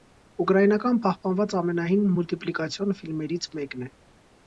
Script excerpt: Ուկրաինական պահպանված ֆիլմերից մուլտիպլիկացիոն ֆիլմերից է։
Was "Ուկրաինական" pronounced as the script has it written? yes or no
yes